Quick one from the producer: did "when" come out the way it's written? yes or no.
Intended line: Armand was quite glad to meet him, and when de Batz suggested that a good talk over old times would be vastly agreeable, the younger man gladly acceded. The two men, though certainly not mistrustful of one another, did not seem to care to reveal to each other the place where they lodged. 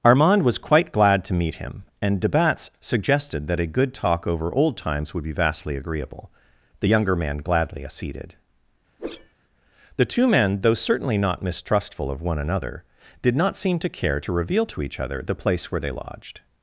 no